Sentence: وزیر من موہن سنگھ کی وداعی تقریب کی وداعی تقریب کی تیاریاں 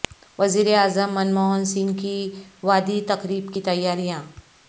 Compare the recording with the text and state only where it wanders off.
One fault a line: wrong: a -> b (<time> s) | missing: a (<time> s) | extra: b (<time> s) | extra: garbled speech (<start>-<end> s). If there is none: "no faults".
extra: اعظم (0.8 s)
missing: وداعی تقریب کی (3.6 s)